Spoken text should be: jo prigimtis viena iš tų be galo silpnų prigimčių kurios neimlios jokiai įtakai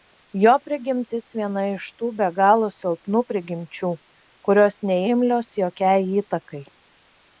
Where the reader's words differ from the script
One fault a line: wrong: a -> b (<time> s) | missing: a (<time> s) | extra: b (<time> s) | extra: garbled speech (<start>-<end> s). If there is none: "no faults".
no faults